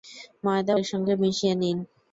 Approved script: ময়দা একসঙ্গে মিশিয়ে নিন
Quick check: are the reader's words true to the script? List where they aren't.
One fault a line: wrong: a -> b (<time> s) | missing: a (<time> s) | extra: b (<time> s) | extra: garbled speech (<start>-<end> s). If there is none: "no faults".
no faults